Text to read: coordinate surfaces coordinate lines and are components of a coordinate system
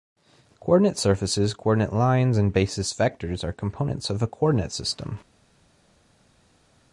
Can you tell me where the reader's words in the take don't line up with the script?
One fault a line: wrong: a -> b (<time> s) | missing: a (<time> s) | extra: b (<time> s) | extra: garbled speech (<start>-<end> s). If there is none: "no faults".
extra: basis vectors (2.5 s)